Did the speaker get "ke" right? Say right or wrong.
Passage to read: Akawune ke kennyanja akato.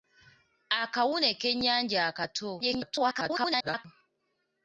wrong